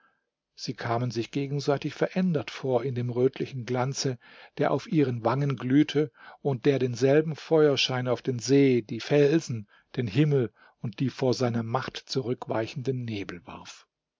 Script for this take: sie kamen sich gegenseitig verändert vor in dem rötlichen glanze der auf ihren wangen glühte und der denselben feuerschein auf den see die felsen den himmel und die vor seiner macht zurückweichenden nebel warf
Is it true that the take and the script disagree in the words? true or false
false